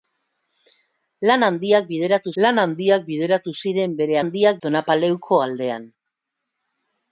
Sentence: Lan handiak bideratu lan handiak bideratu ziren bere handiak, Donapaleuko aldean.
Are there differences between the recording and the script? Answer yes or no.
no